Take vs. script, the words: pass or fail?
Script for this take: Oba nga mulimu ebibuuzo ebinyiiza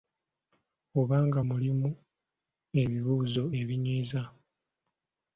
pass